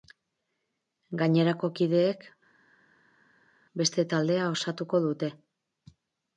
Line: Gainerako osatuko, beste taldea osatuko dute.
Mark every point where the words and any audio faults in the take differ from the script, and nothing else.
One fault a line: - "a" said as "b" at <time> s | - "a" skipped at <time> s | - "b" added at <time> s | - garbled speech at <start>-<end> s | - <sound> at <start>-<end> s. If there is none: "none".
- "osatuko" said as "kideek" at 1.8 s